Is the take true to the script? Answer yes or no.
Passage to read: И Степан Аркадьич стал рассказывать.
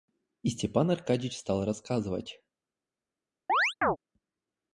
yes